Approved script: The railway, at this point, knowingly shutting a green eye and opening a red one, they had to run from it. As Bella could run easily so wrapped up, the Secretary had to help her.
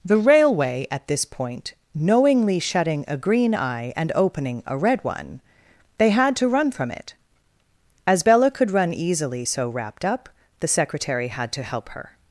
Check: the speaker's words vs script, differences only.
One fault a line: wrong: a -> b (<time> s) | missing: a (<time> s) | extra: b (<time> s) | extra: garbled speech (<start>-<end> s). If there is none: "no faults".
no faults